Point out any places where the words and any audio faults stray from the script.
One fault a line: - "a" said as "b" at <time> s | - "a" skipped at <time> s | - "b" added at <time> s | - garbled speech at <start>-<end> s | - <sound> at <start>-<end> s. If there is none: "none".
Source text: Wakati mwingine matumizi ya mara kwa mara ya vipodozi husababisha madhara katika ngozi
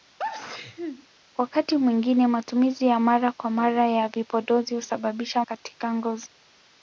- sneeze at 0.2-1.1 s
- "madhara" skipped at 5.4 s